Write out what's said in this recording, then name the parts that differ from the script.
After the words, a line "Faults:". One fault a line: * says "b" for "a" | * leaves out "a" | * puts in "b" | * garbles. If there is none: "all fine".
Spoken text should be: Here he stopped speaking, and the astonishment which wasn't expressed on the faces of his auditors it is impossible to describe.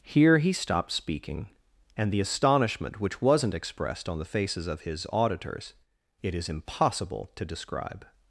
Here he stopped speaking, and the astonishment which wasn't expressed on the faces of his auditors it is impossible to describe.
Faults:
all fine